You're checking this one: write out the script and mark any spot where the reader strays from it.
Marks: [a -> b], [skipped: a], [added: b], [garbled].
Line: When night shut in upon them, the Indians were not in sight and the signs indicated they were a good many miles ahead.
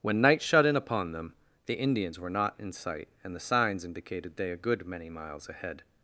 When night shut in upon them, the Indians were not in sight and the signs indicated they [skipped: were] a good many miles ahead.